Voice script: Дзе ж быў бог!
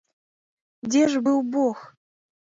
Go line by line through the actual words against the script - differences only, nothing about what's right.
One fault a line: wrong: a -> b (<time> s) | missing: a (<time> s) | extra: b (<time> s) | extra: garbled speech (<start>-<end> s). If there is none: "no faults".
no faults